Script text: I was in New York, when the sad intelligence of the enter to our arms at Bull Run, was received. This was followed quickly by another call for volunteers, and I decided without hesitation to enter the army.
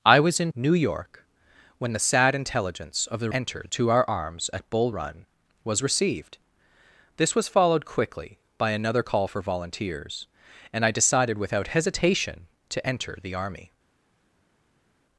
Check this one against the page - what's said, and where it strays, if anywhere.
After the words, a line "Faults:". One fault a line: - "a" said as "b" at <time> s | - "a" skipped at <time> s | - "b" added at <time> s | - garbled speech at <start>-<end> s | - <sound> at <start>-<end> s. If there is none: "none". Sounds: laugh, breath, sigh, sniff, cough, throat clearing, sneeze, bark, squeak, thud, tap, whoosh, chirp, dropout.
I was in New York, when the sad intelligence of the enter to our arms at Bull Run, was received. This was followed quickly by another call for volunteers, and I decided without hesitation to enter the army.
Faults:
none